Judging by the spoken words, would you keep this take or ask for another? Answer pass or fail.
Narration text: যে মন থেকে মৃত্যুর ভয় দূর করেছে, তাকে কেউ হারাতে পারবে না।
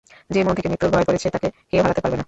fail